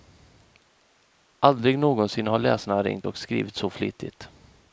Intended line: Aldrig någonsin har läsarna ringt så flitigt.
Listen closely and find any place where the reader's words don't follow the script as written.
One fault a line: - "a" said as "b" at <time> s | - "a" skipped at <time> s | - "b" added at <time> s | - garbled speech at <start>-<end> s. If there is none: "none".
- "och skrivit" added at 3.1 s